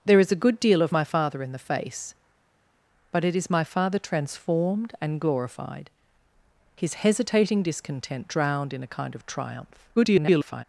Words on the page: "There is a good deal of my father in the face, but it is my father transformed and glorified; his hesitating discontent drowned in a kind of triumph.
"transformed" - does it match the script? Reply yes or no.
yes